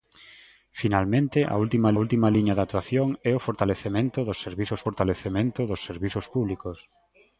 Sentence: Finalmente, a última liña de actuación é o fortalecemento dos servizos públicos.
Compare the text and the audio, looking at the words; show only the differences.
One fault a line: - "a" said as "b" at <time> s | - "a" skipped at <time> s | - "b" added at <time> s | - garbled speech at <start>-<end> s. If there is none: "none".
- "última" added at 2.0 s
- "fortalecemento dos servizos" added at 4.9 s